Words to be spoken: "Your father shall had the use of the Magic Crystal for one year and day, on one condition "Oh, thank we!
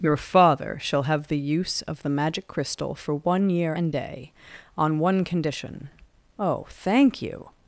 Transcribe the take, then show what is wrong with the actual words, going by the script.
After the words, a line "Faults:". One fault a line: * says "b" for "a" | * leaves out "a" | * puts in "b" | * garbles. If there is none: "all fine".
"Your father shall have the use of the Magic Crystal for one year and day, on one condition "Oh, thank you!
Faults:
* says "have" for "had"
* says "you" for "we"